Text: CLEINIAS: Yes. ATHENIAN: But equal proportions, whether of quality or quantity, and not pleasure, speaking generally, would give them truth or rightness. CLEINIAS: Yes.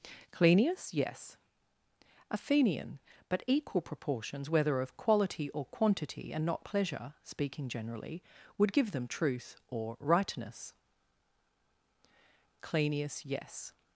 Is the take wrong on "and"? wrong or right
right